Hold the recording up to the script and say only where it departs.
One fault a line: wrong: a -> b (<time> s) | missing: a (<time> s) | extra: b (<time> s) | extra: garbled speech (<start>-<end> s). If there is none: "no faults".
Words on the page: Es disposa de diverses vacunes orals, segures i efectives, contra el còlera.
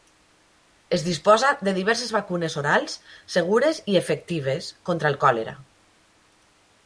no faults